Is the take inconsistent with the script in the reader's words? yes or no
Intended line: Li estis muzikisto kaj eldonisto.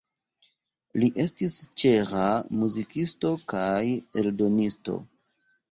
yes